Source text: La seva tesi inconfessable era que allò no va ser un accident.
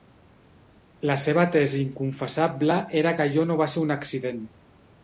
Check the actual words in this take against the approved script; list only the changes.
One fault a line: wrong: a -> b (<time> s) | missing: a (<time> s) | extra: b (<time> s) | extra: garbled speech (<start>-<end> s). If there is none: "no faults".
no faults